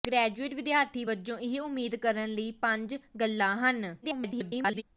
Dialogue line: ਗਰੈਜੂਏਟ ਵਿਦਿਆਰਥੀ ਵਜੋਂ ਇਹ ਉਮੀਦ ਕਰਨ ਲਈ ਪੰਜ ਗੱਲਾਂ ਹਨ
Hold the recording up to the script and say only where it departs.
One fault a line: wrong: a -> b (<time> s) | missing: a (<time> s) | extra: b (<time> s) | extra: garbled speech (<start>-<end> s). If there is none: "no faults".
extra: garbled speech (4.0-4.8 s)